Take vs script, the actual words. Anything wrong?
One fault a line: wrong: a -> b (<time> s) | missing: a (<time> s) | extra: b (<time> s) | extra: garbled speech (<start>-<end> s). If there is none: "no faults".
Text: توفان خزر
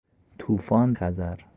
no faults